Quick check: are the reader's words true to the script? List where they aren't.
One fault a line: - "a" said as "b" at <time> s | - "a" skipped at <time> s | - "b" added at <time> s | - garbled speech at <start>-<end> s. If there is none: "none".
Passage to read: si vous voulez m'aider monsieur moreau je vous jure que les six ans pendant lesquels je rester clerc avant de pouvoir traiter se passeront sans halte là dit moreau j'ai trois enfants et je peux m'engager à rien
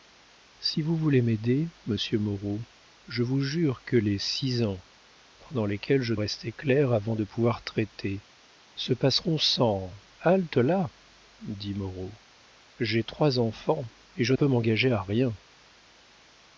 none